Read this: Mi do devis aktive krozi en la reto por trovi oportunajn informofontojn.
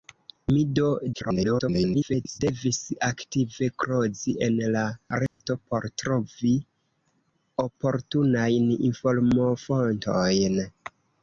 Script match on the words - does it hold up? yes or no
no